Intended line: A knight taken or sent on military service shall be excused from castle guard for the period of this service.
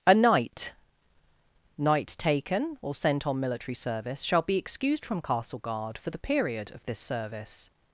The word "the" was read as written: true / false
true